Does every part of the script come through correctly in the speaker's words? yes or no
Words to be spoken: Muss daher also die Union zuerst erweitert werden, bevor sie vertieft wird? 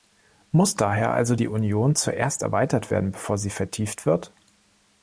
yes